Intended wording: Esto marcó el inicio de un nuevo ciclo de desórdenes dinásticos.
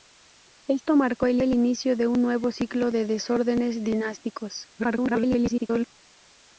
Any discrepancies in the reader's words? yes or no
yes